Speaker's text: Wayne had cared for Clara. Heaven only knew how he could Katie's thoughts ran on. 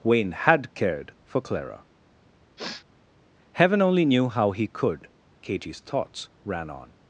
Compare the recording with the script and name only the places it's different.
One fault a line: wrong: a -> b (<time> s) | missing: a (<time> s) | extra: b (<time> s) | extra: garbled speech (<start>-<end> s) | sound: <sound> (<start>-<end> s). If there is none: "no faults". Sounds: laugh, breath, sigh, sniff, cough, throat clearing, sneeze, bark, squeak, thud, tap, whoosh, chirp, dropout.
sound: sniff (2.6-2.9 s)